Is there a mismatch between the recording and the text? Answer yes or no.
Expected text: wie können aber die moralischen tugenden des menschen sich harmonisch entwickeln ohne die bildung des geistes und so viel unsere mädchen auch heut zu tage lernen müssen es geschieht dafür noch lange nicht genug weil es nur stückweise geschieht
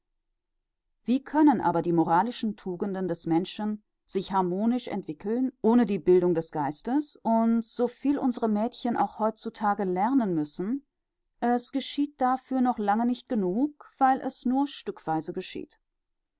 no